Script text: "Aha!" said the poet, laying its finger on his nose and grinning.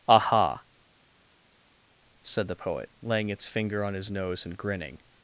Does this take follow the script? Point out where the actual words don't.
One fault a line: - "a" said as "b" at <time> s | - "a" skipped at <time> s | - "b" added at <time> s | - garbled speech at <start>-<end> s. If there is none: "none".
none